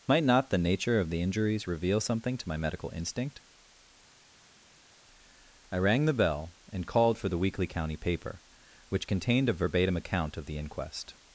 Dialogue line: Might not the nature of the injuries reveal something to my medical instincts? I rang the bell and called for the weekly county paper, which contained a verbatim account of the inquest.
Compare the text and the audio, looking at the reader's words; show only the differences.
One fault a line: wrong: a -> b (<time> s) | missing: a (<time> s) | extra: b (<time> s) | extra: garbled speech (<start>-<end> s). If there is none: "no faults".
wrong: instincts -> instinct (2.9 s)